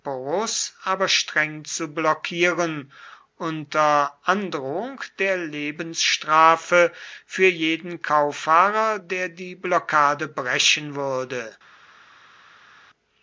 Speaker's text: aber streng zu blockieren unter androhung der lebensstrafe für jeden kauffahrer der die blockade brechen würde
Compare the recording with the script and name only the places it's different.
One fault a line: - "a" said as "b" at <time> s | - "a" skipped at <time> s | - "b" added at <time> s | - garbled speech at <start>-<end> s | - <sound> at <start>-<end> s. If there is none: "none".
none